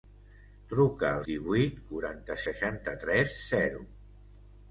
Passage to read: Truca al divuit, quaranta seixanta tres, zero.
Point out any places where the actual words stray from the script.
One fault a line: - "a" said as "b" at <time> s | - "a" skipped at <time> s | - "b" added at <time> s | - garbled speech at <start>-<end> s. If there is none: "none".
none